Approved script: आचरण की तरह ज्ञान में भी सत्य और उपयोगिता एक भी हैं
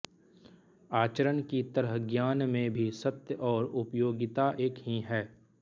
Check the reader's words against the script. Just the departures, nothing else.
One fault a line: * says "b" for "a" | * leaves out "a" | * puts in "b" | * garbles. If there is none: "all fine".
* says "ही" for "भी"